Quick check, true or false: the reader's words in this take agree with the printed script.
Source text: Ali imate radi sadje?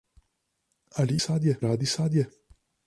false